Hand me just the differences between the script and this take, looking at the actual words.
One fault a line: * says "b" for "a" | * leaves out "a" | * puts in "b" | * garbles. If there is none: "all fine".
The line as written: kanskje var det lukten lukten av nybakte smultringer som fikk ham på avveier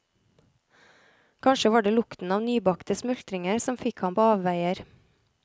* leaves out "lukten"